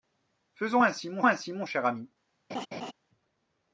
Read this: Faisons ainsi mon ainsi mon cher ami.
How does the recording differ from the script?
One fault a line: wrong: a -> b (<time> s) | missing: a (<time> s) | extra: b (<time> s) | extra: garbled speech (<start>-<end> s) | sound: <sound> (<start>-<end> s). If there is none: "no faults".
sound: laugh (2.5-2.9 s)